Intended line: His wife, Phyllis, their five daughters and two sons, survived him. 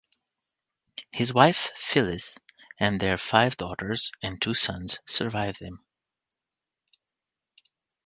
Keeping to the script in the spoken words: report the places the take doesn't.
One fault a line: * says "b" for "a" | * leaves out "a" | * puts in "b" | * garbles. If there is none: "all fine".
* puts in "and"